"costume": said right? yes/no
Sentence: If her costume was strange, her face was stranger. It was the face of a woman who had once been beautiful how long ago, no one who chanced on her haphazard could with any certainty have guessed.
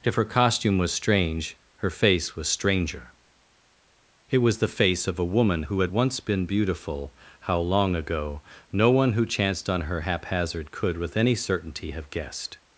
yes